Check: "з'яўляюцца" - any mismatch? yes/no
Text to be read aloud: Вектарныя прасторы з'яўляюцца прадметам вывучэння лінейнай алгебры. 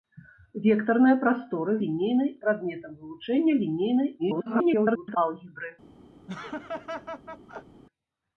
yes